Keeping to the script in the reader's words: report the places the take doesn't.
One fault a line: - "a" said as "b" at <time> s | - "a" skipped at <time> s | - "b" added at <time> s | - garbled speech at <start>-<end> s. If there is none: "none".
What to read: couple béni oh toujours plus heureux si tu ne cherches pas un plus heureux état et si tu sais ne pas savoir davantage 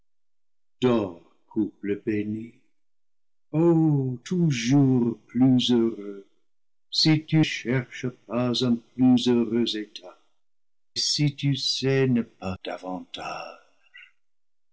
- "ne" skipped at 7.5 s
- "et" skipped at 10.2 s
- "savoir" skipped at 12.6 s